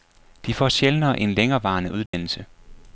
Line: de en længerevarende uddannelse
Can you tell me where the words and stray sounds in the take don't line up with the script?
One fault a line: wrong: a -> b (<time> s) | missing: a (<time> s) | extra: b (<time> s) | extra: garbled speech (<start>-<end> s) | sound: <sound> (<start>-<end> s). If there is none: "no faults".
extra: får sjældnere (0.5 s)
sound: dropout (2.1-2.1 s)